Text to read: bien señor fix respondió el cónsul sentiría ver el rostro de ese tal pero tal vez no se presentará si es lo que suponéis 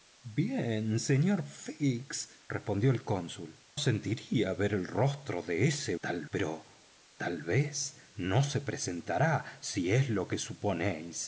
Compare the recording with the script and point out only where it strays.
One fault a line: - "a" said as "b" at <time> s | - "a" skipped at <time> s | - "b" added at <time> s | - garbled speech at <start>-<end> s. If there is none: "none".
none